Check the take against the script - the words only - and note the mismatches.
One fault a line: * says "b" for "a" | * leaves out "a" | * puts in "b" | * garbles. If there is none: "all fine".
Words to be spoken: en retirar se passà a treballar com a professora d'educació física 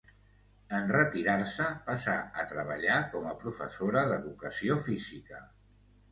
all fine